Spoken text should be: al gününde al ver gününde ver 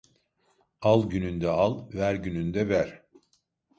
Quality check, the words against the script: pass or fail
pass